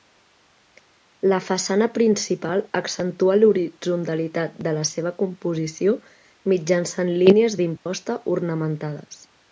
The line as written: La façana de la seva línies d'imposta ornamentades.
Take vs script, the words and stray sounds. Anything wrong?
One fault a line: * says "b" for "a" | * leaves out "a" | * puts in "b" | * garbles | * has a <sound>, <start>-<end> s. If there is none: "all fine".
* puts in "principal accentua l'horitzontalitat"
* puts in "composició mitjançant"
* has a dropout, 7.8-7.9 s